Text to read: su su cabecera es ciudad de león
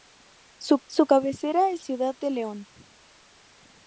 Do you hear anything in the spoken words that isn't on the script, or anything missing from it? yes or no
no